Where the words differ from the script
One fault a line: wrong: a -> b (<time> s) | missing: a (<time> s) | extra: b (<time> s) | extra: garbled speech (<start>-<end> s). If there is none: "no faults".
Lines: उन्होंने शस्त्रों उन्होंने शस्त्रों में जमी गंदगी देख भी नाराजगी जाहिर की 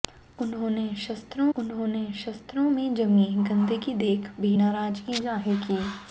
no faults